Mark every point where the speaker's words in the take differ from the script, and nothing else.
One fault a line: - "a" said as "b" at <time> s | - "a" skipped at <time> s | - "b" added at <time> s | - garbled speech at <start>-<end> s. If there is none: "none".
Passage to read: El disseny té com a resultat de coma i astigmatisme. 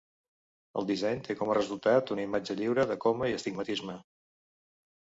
- "una imatge lliure" added at 2.2 s